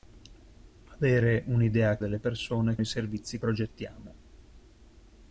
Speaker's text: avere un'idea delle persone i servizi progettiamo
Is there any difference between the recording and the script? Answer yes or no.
no